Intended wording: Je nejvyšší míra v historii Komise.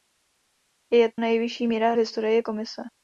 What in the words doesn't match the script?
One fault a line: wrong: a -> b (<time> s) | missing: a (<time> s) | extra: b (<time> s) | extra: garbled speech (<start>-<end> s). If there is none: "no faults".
no faults